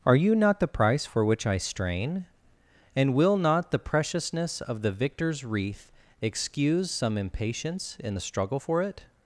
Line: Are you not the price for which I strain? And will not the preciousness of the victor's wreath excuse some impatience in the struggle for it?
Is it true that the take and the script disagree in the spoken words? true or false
false